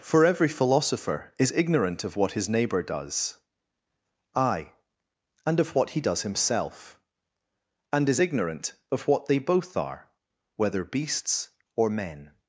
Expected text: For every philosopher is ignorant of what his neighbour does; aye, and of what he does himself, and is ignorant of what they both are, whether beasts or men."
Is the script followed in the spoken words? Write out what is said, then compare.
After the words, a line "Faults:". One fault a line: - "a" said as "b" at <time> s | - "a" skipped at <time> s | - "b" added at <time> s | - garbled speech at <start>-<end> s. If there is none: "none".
For every philosopher is ignorant of what his neighbour does; aye, and of what he does himself, and is ignorant of what they both are, whether beasts or men."
Faults:
none